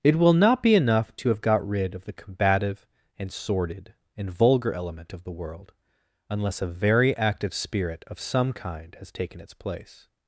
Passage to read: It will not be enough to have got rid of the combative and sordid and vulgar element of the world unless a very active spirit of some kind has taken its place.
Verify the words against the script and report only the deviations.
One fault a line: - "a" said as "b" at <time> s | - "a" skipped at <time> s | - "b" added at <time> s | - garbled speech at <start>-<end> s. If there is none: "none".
none